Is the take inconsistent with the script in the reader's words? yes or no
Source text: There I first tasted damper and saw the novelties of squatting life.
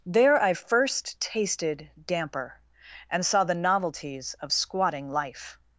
no